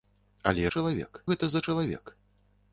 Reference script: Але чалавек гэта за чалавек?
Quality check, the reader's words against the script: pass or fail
pass